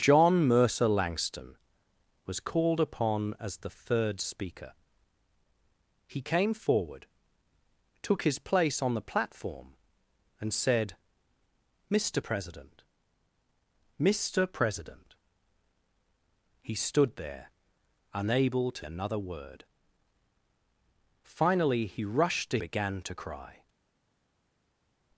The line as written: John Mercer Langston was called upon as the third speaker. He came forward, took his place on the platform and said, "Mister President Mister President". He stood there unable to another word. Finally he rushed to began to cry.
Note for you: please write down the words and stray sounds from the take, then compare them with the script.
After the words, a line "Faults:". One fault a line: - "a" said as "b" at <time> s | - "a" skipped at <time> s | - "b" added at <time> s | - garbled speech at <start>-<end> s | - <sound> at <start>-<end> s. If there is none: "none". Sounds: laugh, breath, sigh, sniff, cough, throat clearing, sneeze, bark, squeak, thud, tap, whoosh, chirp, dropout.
John Mercer Langston was called upon as the third speaker. He came forward, took his place on the platform and said, "Mister President Mister President". He stood there unable to another word. Finally he rushed to began to cry.
Faults:
none